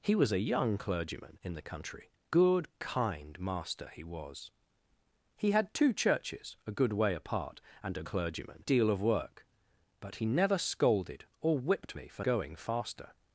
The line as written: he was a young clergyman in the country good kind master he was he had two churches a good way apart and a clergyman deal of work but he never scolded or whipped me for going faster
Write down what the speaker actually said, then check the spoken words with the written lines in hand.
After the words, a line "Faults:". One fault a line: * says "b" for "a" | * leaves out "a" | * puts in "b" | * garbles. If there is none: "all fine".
he was a young clergyman in the country good kind master he was he had two churches a good way apart and a clergyman deal of work but he never scolded or whipped me for going faster
Faults:
all fine